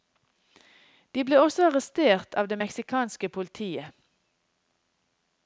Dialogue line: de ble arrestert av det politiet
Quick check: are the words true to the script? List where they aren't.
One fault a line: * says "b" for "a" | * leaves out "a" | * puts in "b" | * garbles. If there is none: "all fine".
* puts in "også"
* puts in "meksikanske"